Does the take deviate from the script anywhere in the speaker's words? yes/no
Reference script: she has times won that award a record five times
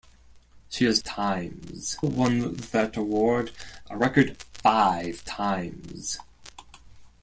no